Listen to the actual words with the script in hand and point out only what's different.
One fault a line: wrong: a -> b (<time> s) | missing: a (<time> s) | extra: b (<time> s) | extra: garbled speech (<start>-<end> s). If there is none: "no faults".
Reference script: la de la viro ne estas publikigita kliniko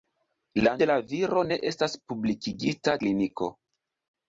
no faults